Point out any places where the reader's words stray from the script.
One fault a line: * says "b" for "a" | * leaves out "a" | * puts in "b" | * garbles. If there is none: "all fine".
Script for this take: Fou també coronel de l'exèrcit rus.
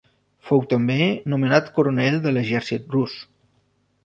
* puts in "nomenat"